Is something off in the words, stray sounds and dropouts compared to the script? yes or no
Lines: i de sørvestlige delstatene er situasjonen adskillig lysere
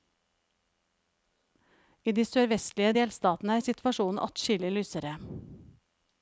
no